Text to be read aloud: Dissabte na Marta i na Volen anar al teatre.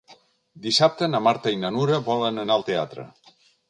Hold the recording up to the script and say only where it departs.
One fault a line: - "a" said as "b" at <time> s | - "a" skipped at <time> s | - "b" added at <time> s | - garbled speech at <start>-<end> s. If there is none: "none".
- "Nura" added at 1.7 s